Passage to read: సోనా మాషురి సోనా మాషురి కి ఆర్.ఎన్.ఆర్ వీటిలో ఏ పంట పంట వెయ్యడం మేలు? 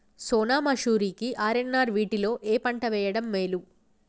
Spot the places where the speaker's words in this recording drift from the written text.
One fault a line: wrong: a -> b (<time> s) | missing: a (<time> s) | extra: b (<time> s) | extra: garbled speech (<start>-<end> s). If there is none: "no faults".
missing: సోనా మాషురి (1.1 s)
missing: పంట (2.9 s)